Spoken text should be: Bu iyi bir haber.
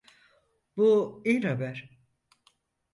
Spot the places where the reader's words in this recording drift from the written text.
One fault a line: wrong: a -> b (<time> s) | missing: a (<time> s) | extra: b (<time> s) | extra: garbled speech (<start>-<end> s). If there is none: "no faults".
missing: bir (1.4 s)